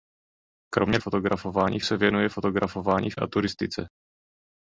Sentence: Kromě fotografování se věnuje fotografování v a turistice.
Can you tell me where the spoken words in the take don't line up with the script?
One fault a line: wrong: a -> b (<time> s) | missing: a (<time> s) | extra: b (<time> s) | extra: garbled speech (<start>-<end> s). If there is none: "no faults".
no faults